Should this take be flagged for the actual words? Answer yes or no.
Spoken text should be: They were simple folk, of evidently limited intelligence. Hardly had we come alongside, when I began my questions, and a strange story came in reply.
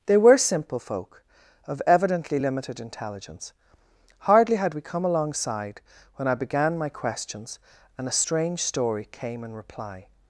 no